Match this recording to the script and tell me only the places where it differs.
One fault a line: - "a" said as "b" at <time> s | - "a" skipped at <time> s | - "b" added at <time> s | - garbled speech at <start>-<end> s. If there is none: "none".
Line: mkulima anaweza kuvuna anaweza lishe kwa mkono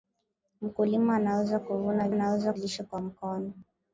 none